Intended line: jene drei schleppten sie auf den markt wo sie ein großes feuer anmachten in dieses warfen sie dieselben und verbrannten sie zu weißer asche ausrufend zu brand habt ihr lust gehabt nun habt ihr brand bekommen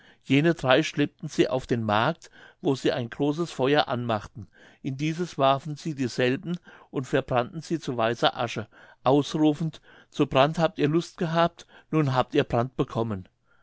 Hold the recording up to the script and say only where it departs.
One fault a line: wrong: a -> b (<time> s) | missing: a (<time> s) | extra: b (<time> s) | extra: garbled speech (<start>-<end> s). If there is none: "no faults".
no faults